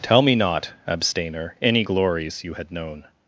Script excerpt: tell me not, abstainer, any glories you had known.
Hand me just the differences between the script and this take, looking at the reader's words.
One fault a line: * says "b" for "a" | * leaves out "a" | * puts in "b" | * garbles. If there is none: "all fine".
all fine